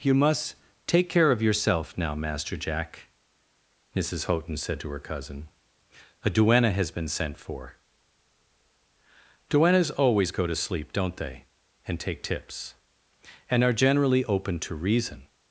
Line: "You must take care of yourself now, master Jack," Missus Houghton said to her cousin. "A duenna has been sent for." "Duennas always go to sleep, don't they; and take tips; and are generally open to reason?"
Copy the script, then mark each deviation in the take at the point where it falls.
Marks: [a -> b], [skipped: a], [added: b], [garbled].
"You must take care of yourself now, master Jack," Missus Houghton said to her cousin. "A duenna has been sent for." "Duennas always go to sleep, don't they; and take tips; and are generally open to reason?"